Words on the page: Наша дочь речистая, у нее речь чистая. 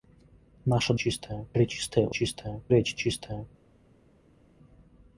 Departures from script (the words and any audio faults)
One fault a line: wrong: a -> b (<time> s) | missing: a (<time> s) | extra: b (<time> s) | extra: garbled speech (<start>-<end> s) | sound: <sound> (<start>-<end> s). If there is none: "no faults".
wrong: дочь -> чистая (0.9 s)
wrong: нее -> чистая (2.1 s)